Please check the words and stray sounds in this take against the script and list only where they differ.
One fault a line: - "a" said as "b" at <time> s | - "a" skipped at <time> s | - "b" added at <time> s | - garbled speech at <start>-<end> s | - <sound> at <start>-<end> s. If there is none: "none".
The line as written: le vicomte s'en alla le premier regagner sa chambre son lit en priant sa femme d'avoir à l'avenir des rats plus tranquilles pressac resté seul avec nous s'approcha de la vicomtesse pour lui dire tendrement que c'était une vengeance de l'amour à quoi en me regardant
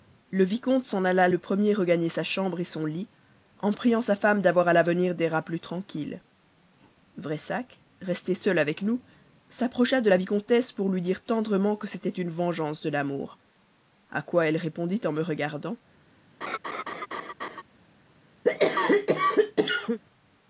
- "elle répondit" added at 14.5 s
- laugh at 16.4-17.6 s
- cough at 18.4-20.0 s